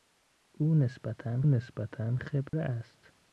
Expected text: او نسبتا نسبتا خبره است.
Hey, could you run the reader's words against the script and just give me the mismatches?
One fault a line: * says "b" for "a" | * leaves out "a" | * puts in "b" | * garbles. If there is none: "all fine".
all fine